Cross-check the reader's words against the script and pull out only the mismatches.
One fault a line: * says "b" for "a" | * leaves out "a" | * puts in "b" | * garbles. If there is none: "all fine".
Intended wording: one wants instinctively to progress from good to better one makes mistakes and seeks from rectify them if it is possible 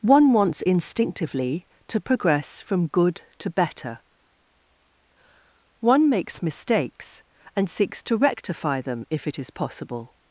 * says "to" for "from"